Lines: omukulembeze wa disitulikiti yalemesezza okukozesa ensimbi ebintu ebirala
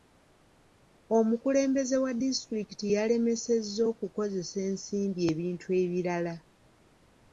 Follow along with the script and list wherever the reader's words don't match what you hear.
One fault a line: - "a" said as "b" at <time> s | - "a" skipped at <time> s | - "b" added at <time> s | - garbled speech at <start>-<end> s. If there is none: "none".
none